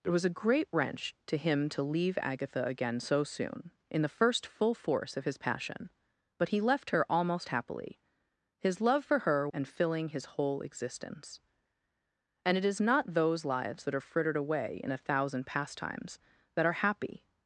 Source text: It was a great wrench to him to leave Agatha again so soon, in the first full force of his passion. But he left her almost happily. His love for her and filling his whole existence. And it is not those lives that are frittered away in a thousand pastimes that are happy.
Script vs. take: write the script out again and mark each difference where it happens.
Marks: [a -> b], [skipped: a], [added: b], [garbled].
It was a great wrench to him to leave Agatha again so soon, in the first full force of his passion. But he left her almost happily. His love for her and filling his whole existence. And it is not those lives that are frittered away in a thousand pastimes that are happy.